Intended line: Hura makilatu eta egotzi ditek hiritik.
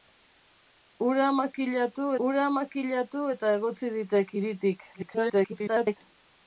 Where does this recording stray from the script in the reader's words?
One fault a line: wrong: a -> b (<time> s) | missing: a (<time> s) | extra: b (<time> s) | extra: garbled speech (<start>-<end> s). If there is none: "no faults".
extra: hura makilatu (2.3 s)
extra: garbled speech (4.9-6.0 s)